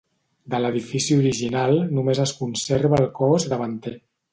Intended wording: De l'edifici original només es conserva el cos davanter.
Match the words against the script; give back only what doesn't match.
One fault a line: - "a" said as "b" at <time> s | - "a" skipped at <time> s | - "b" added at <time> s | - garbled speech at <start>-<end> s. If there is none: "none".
none